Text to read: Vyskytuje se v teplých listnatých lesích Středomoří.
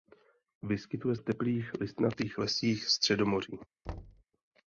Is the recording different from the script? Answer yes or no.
yes